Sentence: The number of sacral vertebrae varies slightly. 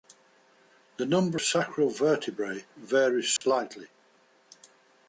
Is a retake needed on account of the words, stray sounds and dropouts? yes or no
yes